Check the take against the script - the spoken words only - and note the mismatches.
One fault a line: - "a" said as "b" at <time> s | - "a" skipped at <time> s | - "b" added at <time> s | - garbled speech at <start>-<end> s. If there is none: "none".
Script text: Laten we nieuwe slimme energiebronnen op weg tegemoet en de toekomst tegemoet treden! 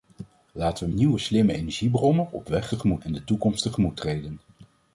none